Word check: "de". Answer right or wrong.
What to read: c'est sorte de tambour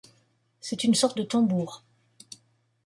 right